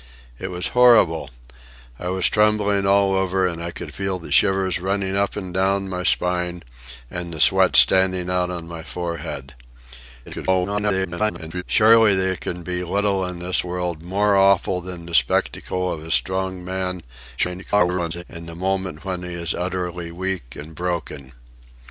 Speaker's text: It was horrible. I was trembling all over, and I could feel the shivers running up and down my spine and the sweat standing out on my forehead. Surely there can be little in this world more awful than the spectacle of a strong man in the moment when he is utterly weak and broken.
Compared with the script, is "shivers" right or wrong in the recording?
right